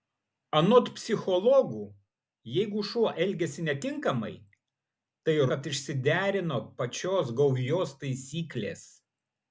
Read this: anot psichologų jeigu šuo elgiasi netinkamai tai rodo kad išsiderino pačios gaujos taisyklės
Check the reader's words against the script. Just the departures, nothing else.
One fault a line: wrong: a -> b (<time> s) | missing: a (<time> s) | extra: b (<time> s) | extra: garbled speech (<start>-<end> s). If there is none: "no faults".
missing: rodo (5.4 s)